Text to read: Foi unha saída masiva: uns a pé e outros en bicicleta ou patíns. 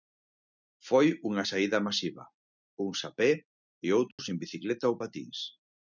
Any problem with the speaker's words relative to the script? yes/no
no